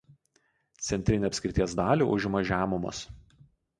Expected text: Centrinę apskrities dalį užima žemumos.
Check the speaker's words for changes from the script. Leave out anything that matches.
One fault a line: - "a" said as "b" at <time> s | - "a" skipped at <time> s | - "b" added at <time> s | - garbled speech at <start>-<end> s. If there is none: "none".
none